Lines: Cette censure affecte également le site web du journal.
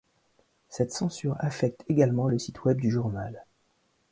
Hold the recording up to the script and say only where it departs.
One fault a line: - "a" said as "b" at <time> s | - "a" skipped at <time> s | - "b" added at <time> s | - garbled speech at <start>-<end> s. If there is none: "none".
none